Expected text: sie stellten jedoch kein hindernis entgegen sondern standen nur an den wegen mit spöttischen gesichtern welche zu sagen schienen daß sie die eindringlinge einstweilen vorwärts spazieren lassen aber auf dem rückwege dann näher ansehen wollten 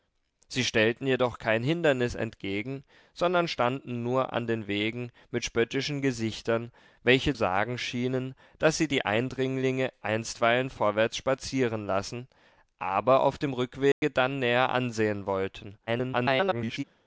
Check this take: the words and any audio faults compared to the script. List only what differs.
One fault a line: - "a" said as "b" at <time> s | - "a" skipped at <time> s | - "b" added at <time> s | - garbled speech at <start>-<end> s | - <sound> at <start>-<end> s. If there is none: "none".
- "zu" skipped at 7.3 s
- dropout at 13.9-14.0 s
- garbled speech at 15.9-16.8 s